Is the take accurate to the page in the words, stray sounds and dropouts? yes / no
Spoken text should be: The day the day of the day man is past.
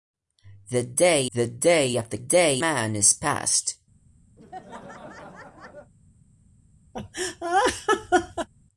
no